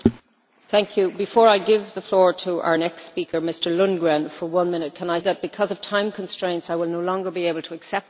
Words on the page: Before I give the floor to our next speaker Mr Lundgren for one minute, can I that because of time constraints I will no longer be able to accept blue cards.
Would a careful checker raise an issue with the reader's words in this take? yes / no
no